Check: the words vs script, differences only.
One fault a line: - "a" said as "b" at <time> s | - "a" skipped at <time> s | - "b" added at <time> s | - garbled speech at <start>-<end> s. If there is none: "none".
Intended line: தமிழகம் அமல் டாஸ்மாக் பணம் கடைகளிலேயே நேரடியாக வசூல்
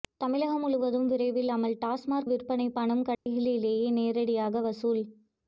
- "முழுவதும் விரைவில்" added at 0.6 s
- "விற்பனை" added at 2.3 s